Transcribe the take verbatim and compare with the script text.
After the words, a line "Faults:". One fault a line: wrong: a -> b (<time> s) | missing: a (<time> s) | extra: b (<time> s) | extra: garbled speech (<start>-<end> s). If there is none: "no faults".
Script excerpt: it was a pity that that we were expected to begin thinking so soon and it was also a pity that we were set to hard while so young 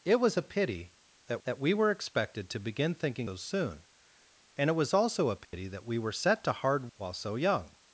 it was a pity that that we were expected to begin thinking so soon and it was also a pity that we were set to hard while so young
Faults:
no faults